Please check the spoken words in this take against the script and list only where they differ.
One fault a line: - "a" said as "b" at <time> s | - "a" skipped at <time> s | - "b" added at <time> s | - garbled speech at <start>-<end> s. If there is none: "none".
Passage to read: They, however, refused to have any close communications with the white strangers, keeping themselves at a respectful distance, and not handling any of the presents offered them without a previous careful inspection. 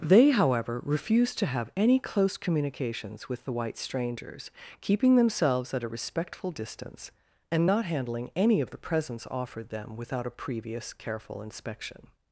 none